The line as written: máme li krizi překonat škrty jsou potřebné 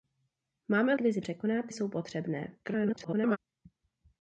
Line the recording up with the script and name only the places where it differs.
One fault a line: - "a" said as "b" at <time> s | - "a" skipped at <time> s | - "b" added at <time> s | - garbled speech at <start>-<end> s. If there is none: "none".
- "li" skipped at 0.9 s
- "škrty" skipped at 1.7 s
- garbled speech at 2.6-3.4 s